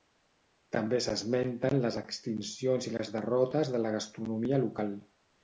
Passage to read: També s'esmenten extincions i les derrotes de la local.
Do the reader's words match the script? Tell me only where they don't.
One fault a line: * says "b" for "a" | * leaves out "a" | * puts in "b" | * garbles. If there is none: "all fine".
* puts in "les"
* puts in "gastronomia"